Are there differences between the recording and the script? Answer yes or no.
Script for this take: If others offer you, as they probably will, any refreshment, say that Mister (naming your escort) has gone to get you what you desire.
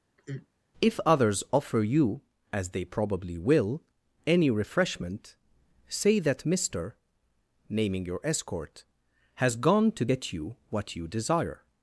no